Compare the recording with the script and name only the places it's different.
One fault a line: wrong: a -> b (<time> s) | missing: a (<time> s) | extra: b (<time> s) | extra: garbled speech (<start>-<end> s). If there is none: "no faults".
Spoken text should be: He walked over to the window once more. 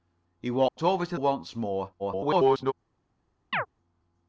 missing: the window (1.1 s)
extra: garbled speech (2.0-2.7 s)